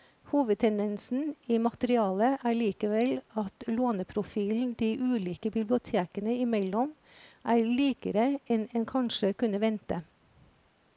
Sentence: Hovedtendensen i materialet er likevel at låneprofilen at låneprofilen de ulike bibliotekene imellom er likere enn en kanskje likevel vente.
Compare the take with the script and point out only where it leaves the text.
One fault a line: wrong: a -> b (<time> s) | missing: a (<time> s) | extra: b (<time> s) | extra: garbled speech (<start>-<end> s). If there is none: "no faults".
missing: at låneprofilen (4.7 s)
wrong: likevel -> kunne (9.4 s)